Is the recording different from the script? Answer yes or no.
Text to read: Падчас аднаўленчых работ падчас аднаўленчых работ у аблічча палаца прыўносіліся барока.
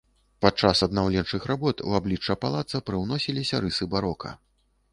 yes